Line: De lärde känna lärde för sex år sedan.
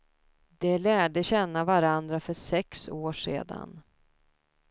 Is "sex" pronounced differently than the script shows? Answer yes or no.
no